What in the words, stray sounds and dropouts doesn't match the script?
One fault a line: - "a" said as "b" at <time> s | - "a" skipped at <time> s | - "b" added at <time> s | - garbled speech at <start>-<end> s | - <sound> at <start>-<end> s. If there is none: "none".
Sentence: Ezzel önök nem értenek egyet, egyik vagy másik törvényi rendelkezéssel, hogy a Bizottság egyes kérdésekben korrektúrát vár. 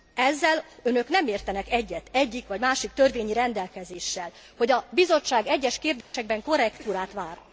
- dropout at 6.0-6.1 s